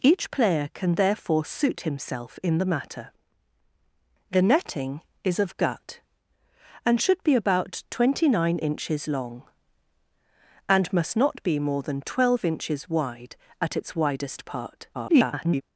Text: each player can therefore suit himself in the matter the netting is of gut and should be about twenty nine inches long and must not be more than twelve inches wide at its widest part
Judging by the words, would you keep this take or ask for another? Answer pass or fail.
fail